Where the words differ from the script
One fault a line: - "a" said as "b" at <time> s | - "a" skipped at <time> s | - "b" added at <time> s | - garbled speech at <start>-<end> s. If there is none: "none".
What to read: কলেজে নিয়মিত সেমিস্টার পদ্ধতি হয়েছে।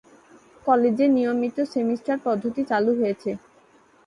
- "চালু" added at 2.7 s